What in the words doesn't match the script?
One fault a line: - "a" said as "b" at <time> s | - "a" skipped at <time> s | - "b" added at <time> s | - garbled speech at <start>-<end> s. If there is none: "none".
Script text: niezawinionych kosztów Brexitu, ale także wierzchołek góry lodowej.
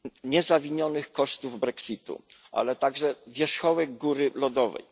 none